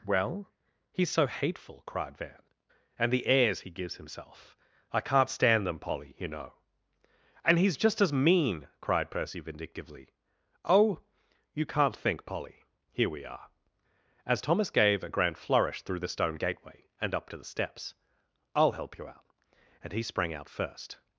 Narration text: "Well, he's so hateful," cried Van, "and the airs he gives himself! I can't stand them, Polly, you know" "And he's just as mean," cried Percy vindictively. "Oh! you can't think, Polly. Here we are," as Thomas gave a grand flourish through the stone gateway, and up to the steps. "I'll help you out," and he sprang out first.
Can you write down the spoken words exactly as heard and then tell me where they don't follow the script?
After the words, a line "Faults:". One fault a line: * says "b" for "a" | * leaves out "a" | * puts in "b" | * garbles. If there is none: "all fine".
"Well, he's so hateful," cried Van, "and the airs he gives himself! I can't stand them, Polly, you know" "And he's just as mean," cried Percy vindictively. "Oh! you can't think, Polly. Here we are," as Thomas gave a grand flourish through the stone gateway, and up to the steps. "I'll help you out," and he sprang out first.
Faults:
all fine